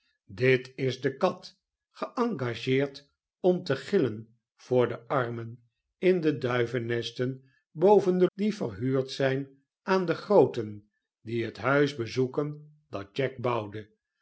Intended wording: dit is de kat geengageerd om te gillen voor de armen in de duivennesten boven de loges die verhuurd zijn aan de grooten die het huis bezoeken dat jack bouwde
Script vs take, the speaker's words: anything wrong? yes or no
yes